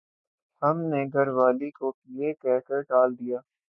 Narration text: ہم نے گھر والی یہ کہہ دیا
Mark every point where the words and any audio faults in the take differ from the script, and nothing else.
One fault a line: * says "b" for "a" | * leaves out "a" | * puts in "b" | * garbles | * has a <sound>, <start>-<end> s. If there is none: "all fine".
* puts in "کو"
* puts in "کر ٹال"